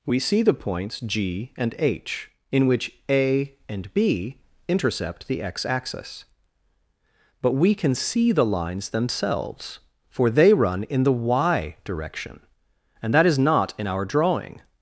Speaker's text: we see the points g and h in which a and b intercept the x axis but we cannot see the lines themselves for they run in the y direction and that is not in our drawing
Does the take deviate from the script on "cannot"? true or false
true